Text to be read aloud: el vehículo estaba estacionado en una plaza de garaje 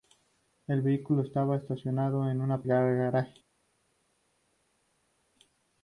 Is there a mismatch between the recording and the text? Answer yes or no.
yes